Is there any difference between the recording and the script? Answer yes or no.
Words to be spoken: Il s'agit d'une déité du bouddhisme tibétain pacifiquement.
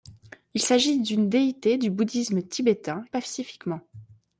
no